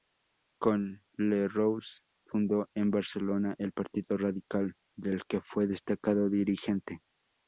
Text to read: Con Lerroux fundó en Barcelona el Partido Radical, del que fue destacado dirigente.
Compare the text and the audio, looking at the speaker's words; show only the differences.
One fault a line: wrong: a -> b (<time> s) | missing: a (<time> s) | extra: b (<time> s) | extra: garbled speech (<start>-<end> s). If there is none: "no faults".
no faults